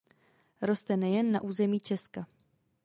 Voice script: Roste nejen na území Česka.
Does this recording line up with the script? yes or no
yes